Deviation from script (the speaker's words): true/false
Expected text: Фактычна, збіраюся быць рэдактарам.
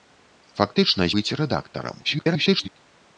true